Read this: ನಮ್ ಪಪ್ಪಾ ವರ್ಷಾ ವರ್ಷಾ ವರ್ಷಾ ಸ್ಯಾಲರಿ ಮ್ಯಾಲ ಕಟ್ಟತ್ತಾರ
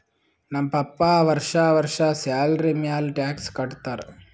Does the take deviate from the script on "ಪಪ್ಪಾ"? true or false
false